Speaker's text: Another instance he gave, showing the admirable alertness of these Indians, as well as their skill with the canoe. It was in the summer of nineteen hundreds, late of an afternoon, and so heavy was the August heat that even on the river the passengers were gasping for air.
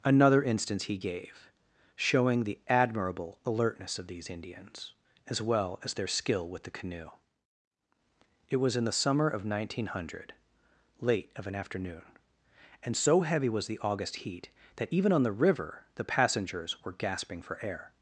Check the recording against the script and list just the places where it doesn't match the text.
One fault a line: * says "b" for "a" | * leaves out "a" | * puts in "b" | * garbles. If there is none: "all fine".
* says "hundred" for "hundreds"